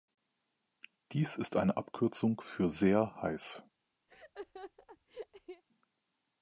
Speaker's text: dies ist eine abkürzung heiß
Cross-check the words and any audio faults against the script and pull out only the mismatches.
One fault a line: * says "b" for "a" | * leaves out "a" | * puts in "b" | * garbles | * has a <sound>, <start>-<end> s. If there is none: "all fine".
* puts in "für sehr"
* has a laugh, 4.1-5.6 s